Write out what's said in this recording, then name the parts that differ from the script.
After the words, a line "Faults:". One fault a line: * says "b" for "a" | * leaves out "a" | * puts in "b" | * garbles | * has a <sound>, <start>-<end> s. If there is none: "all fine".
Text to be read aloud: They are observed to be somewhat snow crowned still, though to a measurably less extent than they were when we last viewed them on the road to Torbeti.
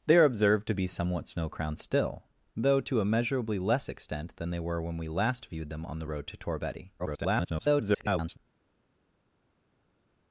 They are observed to be somewhat snow crowned still, though to a measurably less extent than they were when we last viewed them on the road to Torbeti. [garbled]
Faults:
* garbles